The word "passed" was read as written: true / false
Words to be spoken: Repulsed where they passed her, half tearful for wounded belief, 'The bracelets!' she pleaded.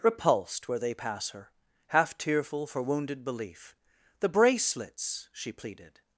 false